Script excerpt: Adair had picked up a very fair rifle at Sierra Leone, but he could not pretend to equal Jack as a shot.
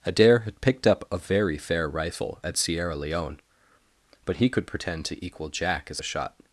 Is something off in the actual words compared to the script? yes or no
yes